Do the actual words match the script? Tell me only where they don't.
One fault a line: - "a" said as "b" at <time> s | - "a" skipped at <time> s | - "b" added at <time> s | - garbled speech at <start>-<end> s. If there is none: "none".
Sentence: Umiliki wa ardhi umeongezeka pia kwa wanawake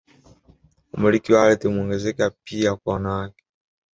none